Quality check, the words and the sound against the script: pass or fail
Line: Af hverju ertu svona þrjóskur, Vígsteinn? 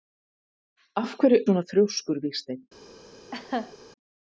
fail